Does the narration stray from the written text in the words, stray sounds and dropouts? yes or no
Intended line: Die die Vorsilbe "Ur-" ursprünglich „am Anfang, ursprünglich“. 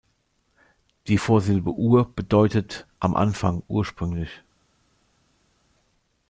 yes